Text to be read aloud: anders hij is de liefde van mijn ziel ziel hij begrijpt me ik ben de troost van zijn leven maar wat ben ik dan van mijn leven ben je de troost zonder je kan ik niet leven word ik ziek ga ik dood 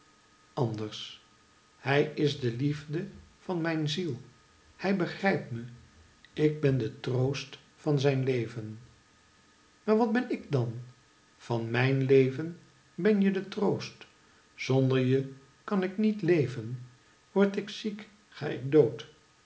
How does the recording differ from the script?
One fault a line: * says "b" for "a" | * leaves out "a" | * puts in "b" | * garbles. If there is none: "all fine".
* leaves out "ziel"